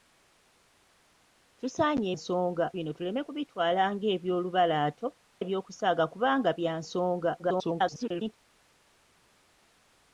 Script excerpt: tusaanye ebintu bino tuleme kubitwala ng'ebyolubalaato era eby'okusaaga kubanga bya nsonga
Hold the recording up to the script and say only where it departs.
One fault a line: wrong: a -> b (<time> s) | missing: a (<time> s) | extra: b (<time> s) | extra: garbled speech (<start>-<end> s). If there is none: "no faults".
wrong: ebintu -> nsonga (2.1 s)
missing: era (5.1 s)
extra: garbled speech (7.4-8.4 s)